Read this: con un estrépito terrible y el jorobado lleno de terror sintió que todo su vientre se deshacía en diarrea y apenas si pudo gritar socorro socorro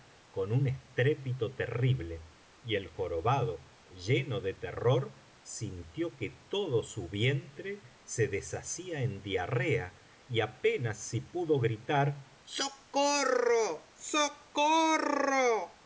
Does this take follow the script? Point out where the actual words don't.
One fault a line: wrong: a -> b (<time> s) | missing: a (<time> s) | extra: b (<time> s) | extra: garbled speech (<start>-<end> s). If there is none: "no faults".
no faults